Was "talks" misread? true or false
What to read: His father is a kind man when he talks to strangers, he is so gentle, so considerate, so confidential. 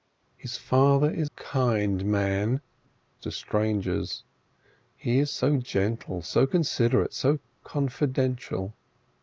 true